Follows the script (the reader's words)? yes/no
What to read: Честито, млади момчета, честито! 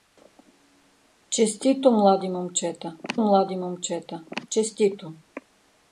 no